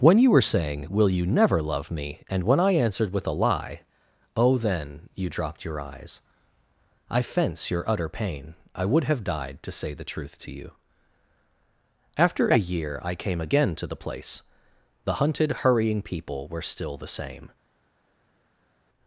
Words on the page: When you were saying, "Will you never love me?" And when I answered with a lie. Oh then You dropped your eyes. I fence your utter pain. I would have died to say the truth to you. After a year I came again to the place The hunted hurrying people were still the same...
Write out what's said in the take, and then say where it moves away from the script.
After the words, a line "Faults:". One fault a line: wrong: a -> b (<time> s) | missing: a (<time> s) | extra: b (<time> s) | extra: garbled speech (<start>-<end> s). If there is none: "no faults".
When you were saying, "Will you never love me?" And when I answered with a lie. Oh then You dropped your eyes. I fence your utter pain. I would have died to say the truth to you. After a year I came again to the place The hunted hurrying people were still the same...
Faults:
no faults